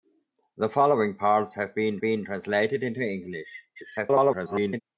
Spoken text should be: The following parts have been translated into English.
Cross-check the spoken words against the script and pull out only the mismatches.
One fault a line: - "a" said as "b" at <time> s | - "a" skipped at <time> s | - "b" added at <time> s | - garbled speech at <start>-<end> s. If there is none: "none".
- "been" added at 2.0 s
- garbled speech at 3.8-4.8 s